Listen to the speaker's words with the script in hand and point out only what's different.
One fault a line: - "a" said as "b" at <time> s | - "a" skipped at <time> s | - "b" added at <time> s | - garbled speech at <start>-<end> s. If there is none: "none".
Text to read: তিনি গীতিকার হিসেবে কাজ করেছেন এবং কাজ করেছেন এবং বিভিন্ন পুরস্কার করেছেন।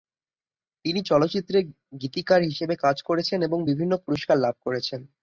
- "চলচ্চিত্রে" added at 1.0 s
- "কাজ করেছেন এবং" skipped at 3.6 s
- "লাভ" added at 4.4 s